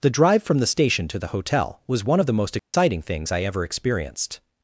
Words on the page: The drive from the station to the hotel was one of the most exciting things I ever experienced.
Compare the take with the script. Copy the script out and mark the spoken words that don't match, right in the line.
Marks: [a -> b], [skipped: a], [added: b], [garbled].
The drive from the station to the hotel was one of the most exciting things I ever experienced.